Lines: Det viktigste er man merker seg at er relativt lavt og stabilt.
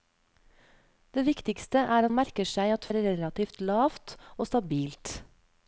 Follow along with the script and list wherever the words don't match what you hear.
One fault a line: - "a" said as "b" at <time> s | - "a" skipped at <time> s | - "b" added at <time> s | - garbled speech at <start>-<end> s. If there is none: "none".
none